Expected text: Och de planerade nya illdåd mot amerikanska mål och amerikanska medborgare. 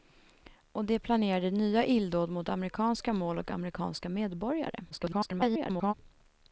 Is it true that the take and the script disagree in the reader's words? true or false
true